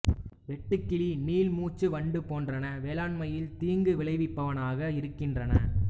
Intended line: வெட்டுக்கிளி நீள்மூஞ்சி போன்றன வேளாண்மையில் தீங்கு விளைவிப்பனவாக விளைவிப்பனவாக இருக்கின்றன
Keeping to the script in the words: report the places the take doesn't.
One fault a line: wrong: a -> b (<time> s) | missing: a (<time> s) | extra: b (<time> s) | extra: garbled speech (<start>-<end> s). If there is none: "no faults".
extra: வண்டு (1.9 s)
missing: விளைவிப்பனவாக (4.9 s)